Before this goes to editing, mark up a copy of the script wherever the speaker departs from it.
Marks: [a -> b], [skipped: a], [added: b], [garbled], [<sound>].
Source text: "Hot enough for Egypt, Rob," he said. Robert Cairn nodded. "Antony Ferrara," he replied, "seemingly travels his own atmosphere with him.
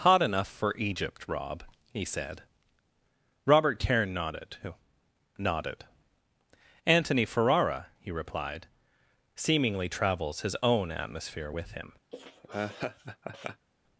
"Hot enough for Egypt, Rob," he said. Robert Cairn nodded. [added: nodded] "Antony Ferrara," he replied, "seemingly travels his own atmosphere with him. [laugh]